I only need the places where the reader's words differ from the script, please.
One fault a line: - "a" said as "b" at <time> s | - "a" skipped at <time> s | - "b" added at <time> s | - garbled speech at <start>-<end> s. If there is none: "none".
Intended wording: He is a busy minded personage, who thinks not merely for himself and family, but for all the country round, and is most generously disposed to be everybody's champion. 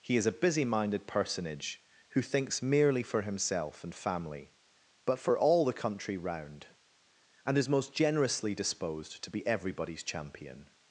- "not" skipped at 2.6 s